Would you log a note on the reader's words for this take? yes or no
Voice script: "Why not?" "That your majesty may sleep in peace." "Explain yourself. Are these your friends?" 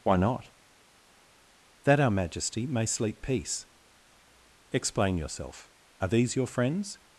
yes